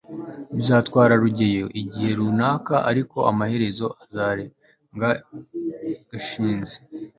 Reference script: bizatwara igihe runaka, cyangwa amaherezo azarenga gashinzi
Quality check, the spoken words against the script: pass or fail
fail